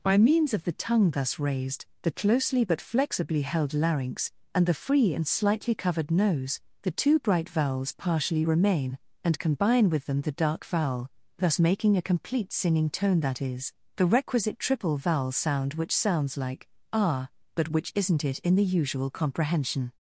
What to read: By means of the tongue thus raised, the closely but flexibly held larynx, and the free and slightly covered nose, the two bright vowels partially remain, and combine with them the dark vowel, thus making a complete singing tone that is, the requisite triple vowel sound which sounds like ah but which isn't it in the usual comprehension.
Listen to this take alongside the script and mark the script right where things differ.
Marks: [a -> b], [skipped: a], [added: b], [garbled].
By means of the tongue thus raised, the closely but flexibly held larynx, and the free and slightly covered nose, the two bright vowels partially remain, and combine with them the dark vowel, thus making a complete singing tone that is, the requisite triple vowel sound which sounds like ah but which isn't it in the usual comprehension.